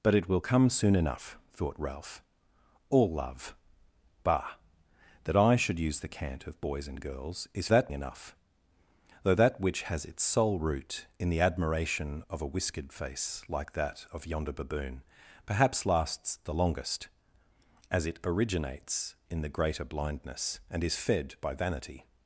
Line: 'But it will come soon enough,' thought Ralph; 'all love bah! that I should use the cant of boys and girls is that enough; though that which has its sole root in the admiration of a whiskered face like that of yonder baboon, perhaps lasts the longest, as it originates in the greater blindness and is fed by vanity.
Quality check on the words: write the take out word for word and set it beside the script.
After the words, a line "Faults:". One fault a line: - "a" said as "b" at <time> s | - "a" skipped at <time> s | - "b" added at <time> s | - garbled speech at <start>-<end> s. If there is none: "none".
'But it will come soon enough,' thought Ralph; 'all love bah! that I should use the cant of boys and girls is that enough; though that which has its sole root in the admiration of a whiskered face like that of yonder baboon, perhaps lasts the longest, as it originates in the greater blindness and is fed by vanity.
Faults:
none